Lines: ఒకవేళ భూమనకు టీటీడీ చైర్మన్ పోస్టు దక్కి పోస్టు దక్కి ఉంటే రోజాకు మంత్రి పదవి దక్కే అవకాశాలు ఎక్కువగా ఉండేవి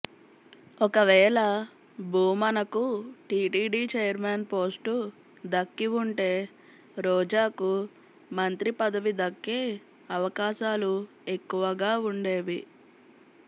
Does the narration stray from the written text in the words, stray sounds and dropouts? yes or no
yes